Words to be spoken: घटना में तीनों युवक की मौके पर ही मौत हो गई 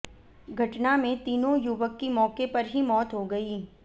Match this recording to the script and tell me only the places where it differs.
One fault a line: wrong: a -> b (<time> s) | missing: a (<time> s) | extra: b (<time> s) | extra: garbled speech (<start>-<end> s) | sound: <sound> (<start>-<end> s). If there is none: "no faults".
no faults